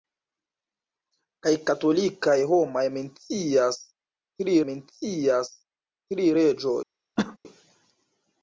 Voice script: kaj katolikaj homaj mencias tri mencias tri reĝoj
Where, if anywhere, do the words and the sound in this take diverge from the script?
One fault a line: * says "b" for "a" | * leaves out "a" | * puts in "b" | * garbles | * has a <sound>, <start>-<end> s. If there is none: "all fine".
* has a cough, 7.2-7.4 s